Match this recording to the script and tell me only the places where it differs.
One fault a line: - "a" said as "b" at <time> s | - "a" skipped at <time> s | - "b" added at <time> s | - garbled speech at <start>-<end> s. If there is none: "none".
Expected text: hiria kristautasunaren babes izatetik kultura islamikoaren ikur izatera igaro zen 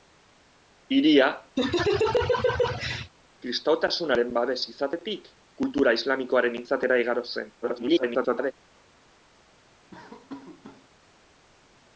- "ikur" skipped at 6.6 s
- garbled speech at 7.6-8.5 s